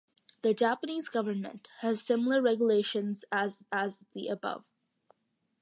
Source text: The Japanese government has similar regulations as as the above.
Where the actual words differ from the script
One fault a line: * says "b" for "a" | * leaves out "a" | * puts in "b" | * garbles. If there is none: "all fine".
all fine